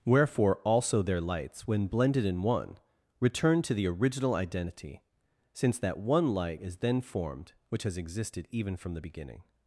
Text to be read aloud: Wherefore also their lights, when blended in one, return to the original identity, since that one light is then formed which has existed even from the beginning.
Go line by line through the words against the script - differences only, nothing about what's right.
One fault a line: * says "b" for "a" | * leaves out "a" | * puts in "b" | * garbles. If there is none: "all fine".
all fine